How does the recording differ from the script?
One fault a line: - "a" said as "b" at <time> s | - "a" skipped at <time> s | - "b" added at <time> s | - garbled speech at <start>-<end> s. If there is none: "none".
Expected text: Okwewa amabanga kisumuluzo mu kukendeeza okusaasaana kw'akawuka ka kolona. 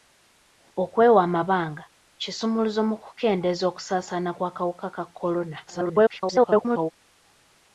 - garbled speech at 5.7-6.9 s